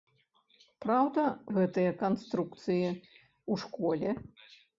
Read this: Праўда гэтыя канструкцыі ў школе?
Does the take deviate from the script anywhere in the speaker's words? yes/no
no